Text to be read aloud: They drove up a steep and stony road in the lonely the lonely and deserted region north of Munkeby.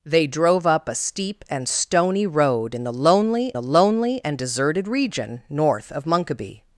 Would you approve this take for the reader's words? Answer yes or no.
yes